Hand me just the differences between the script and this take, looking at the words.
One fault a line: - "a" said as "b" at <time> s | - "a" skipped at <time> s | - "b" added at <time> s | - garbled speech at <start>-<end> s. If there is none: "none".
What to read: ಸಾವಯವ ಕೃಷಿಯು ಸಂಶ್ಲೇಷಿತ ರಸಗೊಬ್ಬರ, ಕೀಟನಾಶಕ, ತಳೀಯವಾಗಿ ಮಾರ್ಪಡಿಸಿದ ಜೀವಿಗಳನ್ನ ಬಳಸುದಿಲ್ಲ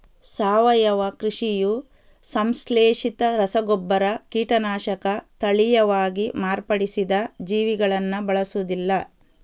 none